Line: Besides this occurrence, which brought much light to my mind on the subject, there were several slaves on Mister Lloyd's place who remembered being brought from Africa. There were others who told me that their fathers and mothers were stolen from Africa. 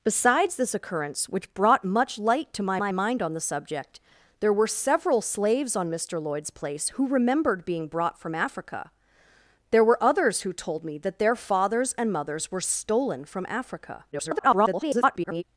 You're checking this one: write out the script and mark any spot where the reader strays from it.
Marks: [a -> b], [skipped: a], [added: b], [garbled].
Besides this occurrence, which brought much light to my [added: my] mind on the subject, there were several slaves on Mister Lloyd's place who remembered being brought from Africa. There were others who told me that their fathers and mothers were stolen from Africa. [garbled]